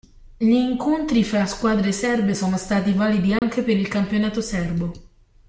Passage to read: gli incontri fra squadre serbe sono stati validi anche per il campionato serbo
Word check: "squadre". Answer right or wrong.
right